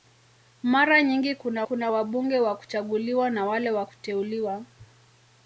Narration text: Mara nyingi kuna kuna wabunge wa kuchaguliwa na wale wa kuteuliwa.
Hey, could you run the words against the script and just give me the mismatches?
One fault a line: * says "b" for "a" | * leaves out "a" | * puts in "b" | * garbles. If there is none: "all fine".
all fine